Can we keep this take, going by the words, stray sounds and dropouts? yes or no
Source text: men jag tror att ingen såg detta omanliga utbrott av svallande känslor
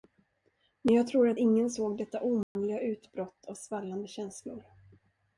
no